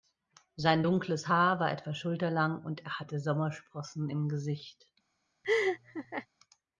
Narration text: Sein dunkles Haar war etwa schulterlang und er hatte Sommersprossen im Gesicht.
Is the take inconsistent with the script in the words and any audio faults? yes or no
yes